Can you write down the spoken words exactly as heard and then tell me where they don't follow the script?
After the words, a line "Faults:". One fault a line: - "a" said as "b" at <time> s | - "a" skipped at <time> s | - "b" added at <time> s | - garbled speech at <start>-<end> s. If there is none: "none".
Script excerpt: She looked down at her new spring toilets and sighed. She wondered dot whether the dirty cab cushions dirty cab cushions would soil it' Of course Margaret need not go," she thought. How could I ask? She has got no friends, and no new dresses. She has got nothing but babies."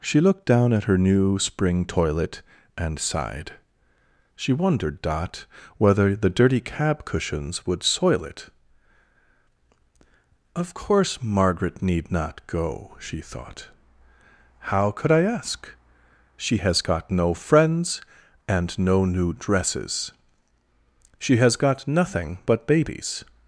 She looked down at her new spring toilet and sighed. She wondered dot whether the dirty cab cushions would soil it' Of course Margaret need not go," she thought. How could I ask? She has got no friends, and no new dresses. She has got nothing but babies."
Faults:
- "toilets" said as "toilet" at 1.9 s
- "dirty cab cushions" skipped at 7.7 s